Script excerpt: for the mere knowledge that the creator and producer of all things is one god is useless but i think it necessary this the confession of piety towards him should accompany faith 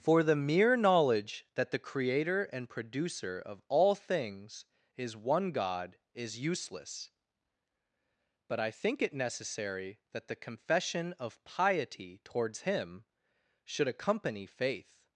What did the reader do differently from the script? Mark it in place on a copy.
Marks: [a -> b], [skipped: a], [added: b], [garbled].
for the mere knowledge that the creator and producer of all things is one god is useless but i think it necessary [this -> that] the confession of piety towards him should accompany faith